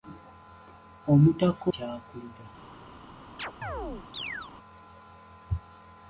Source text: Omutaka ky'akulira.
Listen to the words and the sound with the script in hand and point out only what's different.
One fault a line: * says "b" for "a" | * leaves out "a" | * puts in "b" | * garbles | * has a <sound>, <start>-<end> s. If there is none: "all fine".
* has a chirp, 3.4-4.5 s